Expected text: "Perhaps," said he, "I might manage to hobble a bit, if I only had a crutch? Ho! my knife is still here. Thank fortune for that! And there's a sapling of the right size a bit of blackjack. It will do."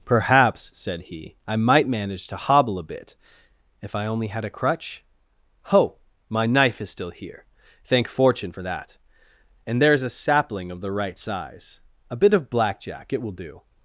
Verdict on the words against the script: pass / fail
pass